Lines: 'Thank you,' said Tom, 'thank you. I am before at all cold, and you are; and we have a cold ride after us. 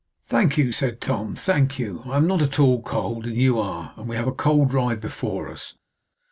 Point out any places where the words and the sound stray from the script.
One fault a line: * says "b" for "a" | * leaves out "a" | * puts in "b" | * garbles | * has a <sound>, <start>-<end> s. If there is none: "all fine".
* says "not" for "before"
* says "before" for "after"